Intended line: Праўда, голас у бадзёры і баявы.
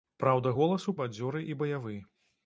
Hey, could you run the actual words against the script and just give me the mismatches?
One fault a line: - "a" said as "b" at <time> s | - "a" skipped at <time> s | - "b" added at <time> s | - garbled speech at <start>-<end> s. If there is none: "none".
none